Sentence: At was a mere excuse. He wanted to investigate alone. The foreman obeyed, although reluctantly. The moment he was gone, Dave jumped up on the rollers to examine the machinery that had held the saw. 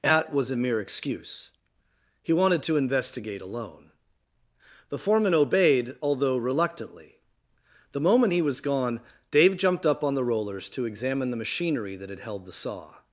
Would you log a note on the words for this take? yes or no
no